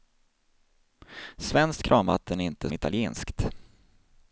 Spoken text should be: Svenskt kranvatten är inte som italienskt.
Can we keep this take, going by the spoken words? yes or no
no